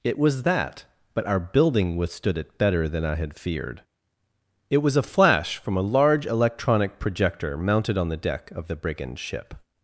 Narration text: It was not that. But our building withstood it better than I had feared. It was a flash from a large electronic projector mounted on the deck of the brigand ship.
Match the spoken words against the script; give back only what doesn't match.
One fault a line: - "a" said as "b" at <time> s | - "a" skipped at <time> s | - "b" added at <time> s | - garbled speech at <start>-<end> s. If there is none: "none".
- "not" skipped at 0.4 s